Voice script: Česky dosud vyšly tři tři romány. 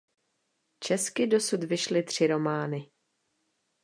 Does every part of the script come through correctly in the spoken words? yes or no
no